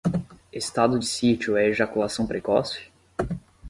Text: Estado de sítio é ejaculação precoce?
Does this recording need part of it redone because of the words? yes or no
no